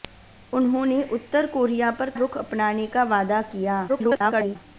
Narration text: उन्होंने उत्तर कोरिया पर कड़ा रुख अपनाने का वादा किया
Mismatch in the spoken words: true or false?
true